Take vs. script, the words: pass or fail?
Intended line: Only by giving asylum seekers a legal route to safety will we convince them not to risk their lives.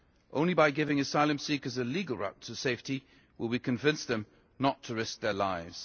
pass